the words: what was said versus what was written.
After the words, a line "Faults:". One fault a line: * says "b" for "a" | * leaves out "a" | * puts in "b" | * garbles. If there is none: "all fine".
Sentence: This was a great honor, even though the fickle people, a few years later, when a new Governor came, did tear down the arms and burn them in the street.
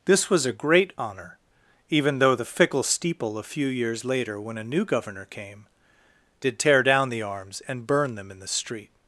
This was a great honor, even though the fickle steeple, a few years later, when a new Governor came, did tear down the arms and burn them in the street.
Faults:
* says "steeple" for "people"